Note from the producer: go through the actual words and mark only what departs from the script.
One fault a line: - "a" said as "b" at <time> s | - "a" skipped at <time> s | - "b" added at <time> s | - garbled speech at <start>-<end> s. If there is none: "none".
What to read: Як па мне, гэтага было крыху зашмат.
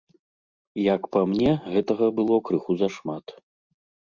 none